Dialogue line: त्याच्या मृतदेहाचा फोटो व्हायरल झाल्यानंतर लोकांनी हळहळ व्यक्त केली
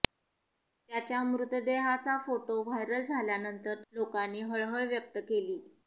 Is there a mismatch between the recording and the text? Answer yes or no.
no